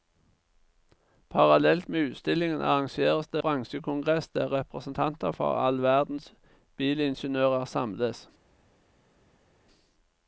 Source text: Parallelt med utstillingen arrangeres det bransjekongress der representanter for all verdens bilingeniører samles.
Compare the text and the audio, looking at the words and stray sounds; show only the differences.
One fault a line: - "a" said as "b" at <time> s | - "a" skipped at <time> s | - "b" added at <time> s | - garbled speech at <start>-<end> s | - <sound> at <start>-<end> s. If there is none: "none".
none